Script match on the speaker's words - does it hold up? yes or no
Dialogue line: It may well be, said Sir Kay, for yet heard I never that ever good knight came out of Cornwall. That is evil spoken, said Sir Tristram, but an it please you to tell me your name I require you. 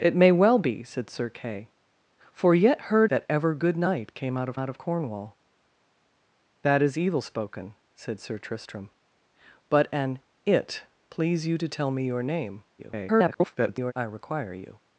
no